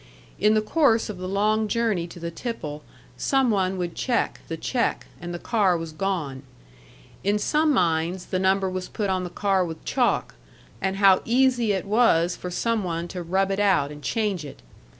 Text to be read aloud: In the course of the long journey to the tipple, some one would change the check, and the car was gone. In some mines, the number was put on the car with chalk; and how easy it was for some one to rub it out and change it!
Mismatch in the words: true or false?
true